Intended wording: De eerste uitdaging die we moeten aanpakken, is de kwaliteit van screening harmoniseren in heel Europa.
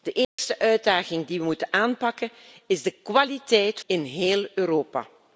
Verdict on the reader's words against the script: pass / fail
fail